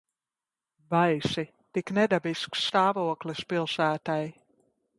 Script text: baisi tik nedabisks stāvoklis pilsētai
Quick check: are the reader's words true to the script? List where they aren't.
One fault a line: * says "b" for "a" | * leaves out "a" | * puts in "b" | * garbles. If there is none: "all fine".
all fine